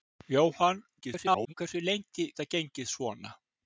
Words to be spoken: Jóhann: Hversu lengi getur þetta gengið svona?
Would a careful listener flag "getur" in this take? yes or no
yes